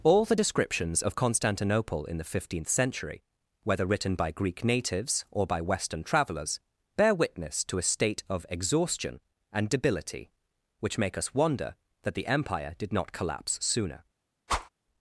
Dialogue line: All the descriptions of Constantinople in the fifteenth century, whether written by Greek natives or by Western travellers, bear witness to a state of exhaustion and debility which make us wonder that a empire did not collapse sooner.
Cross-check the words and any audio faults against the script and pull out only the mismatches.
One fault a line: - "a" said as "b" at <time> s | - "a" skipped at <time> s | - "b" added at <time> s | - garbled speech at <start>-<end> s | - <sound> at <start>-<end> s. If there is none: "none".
- "a" said as "the" at 12.1 s
- whoosh at 14.5-14.7 s